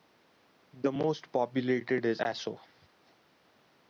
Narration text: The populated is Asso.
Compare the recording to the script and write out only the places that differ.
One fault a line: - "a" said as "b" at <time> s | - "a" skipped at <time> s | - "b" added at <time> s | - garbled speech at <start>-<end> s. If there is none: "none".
- "most" added at 0.9 s